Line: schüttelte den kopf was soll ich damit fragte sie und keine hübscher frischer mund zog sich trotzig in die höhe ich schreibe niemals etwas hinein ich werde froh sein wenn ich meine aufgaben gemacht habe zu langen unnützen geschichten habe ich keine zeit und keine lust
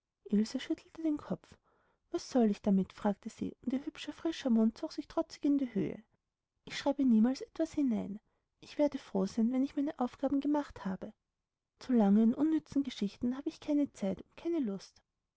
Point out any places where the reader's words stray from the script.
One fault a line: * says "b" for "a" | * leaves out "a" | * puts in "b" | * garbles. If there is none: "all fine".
* says "ihr" for "keine"